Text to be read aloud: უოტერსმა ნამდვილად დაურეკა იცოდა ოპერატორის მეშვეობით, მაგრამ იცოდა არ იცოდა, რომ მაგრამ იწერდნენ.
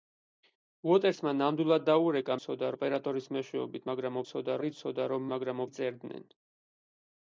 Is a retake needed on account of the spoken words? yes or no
no